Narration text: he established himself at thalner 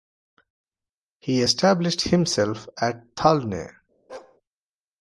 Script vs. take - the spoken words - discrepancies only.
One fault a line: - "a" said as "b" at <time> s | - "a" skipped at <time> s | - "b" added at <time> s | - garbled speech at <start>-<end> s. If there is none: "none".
none